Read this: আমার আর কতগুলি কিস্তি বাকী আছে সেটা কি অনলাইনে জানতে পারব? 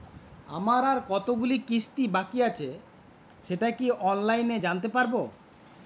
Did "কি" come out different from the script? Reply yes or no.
no